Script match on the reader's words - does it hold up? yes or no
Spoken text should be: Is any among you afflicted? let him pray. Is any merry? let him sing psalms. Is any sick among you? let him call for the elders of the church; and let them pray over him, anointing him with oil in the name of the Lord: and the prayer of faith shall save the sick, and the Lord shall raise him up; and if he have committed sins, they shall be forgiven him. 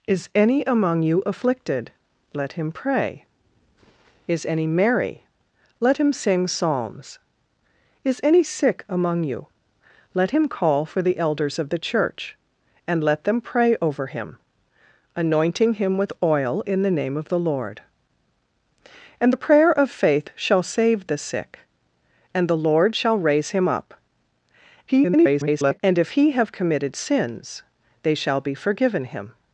no